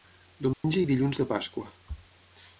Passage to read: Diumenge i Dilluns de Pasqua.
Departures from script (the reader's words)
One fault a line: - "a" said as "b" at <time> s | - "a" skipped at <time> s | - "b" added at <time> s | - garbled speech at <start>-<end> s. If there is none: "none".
none